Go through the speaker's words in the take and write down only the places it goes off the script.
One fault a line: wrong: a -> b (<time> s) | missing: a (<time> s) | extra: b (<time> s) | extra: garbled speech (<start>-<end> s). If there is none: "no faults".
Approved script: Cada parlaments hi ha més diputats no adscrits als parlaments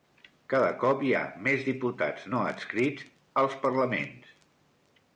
wrong: parlaments -> cop (0.8 s)